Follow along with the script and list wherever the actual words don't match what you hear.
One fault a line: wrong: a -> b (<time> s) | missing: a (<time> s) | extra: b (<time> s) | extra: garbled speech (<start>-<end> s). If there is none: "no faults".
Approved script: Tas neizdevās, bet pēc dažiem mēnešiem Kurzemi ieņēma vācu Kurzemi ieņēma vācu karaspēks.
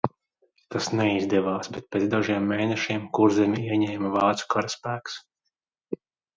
missing: Kurzemi ieņēma vācu (4.5 s)